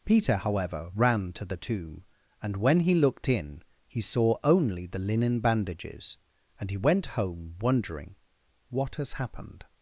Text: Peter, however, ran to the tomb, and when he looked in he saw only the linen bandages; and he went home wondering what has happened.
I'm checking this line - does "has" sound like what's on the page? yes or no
yes